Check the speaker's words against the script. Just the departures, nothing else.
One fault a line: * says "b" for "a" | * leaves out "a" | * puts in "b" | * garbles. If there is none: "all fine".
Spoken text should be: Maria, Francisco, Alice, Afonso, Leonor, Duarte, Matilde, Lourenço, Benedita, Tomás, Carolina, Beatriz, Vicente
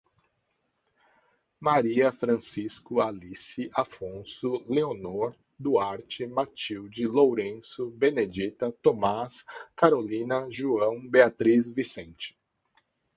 * puts in "João"